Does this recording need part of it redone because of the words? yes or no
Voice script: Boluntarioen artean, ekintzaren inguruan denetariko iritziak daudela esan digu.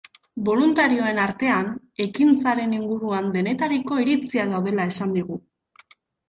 no